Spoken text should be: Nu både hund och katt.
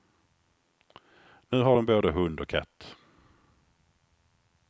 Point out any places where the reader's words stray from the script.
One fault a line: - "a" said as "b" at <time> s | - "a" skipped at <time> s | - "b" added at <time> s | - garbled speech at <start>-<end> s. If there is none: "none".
- "har de" added at 1.6 s